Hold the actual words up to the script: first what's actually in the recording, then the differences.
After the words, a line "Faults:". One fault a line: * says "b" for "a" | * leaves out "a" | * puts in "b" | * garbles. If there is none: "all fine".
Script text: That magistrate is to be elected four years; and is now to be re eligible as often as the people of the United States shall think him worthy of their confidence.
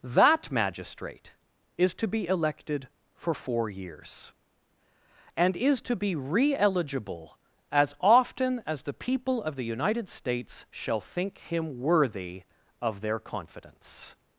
That magistrate is to be elected for four years; and is to be re eligible as often as the people of the United States shall think him worthy of their confidence.
Faults:
* puts in "for"
* leaves out "now"